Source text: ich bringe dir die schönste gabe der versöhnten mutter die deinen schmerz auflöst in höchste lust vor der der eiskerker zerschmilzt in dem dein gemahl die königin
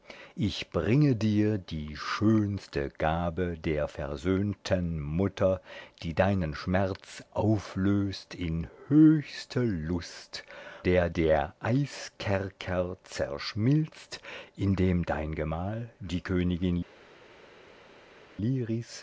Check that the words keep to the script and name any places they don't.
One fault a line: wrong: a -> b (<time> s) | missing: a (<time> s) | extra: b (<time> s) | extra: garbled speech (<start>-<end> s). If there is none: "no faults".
missing: vor (10.4 s)